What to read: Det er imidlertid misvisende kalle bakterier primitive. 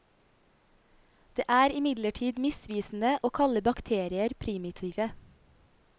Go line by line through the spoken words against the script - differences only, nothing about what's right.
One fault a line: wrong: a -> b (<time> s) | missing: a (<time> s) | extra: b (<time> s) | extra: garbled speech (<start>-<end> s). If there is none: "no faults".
extra: å (3.2 s)